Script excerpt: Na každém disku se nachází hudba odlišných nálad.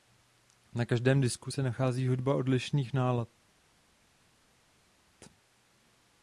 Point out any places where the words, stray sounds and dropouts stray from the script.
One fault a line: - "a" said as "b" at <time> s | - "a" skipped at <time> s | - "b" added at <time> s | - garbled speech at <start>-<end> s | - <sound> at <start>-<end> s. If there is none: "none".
none